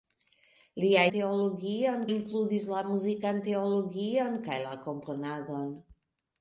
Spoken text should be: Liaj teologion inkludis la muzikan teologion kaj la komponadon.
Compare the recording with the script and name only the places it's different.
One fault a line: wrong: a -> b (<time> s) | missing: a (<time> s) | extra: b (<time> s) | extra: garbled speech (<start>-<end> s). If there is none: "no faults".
no faults